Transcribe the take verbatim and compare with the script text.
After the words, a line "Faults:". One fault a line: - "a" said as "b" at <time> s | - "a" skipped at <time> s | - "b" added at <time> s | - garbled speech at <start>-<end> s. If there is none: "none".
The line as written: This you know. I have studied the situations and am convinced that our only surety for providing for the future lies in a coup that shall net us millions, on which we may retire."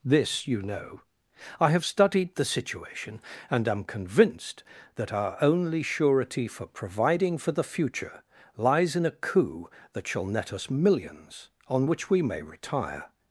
This you know. I have studied the situation and am convinced that our only surety for providing for the future lies in a coup that shall net us millions, on which we may retire."
Faults:
- "situations" said as "situation" at 2.4 s